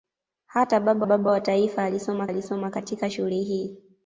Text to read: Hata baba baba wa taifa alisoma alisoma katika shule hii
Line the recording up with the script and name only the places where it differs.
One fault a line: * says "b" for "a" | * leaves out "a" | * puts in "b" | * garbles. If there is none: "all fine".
all fine